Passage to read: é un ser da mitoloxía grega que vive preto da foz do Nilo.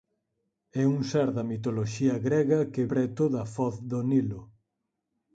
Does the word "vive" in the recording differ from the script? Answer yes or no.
yes